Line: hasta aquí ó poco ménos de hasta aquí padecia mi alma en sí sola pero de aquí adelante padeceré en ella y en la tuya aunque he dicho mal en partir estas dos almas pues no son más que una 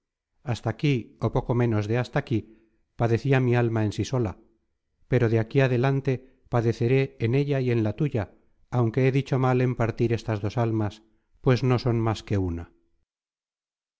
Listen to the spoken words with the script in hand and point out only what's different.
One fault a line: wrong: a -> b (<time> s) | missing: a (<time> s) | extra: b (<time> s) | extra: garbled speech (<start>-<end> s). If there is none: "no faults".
no faults